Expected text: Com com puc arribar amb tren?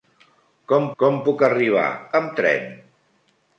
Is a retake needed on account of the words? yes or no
no